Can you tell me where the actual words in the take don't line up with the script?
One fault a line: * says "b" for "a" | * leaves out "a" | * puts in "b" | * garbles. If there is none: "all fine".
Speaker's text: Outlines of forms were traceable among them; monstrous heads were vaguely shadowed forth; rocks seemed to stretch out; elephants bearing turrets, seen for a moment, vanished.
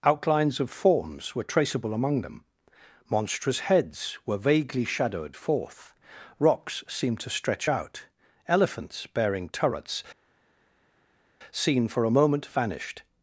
all fine